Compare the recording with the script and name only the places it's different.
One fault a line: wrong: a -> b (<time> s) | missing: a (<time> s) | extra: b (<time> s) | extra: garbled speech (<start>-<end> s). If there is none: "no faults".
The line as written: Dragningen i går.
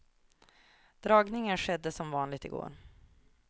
extra: skedde som vanligt (1.6 s)